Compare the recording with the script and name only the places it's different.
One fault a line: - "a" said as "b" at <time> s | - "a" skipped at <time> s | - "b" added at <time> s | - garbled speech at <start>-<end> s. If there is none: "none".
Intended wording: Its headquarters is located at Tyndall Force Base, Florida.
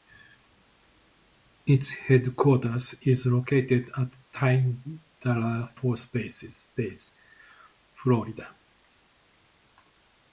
none